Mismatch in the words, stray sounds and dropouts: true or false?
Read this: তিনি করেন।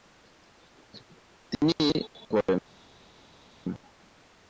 false